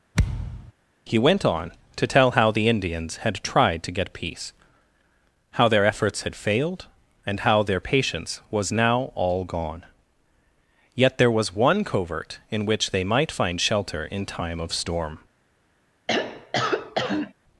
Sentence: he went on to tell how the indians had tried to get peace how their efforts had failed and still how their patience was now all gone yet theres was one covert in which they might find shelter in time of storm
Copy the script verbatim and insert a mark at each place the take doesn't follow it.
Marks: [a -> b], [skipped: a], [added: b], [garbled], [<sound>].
[thud] he went on to tell how the indians had tried to get peace how their efforts had failed and [skipped: still] how their patience was now all gone yet [theres -> there] was one covert in which they might find shelter in time of storm [throat clearing]